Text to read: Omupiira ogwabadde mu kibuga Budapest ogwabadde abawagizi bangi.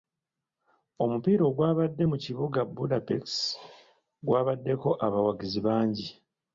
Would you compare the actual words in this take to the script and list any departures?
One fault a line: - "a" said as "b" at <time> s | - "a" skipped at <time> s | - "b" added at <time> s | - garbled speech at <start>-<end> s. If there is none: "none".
- "ogwabadde" said as "gwabaddeko" at 4.3 s